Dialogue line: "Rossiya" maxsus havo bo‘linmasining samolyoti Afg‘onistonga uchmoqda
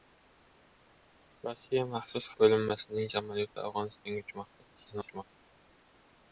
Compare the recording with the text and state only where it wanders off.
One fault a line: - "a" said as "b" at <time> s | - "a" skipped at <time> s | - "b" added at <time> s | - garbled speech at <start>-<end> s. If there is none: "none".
- "havo" skipped at 2.3 s
- garbled speech at 4.8-5.2 s